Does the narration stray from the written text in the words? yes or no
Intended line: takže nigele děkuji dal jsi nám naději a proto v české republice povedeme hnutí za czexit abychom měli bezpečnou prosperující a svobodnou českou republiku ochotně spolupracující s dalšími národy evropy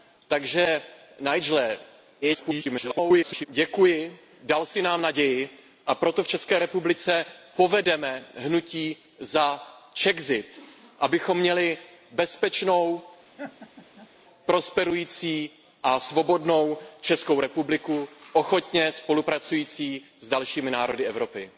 yes